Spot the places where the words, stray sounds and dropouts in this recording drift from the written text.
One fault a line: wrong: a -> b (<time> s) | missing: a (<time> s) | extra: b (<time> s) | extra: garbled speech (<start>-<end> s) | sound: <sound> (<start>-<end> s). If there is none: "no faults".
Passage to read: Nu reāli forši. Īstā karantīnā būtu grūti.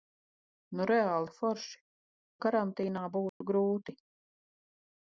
missing: Īstā (1.8 s)
sound: dropout (3.3-3.4 s)